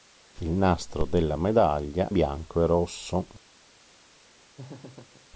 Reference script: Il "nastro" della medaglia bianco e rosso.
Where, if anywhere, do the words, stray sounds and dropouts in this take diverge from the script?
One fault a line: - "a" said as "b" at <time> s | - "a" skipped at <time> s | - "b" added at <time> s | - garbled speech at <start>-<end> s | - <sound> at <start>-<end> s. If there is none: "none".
- laugh at 4.6-5.3 s